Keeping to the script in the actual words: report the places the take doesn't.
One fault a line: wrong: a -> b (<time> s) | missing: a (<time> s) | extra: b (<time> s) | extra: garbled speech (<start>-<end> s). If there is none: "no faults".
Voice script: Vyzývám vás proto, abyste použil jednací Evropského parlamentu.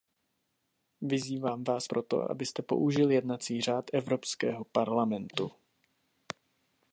extra: řád (3.6 s)